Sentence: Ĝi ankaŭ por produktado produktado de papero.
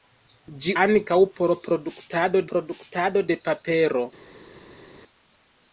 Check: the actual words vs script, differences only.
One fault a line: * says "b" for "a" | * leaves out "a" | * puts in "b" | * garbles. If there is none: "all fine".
all fine